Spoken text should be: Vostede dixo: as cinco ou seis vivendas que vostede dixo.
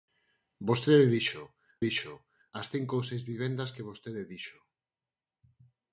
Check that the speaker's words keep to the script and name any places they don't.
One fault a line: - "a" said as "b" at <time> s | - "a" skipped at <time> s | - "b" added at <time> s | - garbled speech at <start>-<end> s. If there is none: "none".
- "dixo" added at 1.9 s